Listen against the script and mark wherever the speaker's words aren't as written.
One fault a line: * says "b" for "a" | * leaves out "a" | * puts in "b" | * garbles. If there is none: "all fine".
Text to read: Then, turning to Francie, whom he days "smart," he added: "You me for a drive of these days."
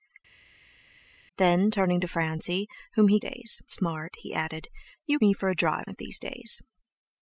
all fine